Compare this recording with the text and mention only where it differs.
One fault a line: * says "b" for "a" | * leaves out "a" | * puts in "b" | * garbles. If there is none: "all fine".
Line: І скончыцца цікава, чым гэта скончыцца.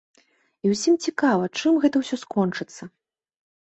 * says "ўсім" for "скончыцца"
* puts in "ўсё"